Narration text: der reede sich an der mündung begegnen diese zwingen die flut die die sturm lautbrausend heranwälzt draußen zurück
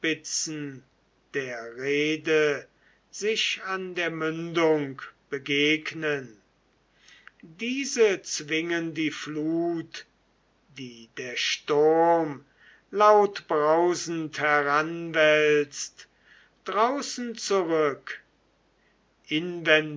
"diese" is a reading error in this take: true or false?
false